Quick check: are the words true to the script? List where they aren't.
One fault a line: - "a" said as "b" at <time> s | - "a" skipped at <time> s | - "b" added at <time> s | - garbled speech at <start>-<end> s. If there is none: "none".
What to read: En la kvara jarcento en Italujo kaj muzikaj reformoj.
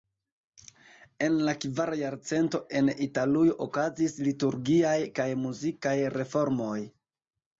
- "okazis liturgiaj" added at 3.7 s